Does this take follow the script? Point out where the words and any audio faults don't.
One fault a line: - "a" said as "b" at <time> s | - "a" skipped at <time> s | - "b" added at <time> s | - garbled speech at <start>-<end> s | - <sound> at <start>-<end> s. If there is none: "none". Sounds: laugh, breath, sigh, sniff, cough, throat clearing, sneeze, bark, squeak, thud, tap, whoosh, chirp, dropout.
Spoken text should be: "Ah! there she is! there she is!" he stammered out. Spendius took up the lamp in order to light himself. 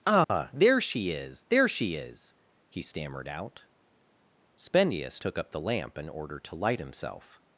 - dropout at 0.2-0.3 s